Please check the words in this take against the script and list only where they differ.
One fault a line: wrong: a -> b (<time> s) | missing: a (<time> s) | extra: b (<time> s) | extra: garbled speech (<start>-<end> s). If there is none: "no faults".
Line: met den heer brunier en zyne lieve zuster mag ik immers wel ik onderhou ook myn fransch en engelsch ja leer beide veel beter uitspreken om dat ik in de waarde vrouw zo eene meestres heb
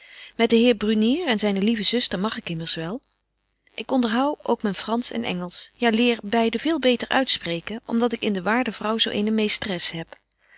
no faults